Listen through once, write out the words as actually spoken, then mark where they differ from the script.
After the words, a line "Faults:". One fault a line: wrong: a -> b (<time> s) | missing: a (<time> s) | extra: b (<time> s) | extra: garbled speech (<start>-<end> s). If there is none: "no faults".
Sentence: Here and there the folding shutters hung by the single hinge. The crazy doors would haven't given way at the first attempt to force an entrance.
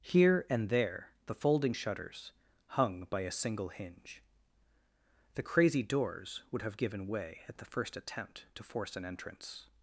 Here and there the folding shutters hung by a single hinge. The crazy doors would have given way at the first attempt to force an entrance.
Faults:
wrong: the -> a (3.2 s)
wrong: haven't -> have (6.6 s)